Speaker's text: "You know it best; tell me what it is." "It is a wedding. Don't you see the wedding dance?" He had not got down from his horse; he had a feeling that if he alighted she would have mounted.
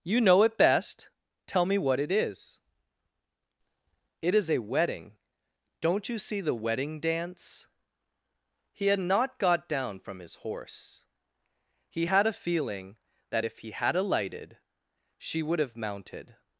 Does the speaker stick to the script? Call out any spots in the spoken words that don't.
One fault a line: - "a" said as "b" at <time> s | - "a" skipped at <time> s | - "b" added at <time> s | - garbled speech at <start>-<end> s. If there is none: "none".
- "had" added at 13.7 s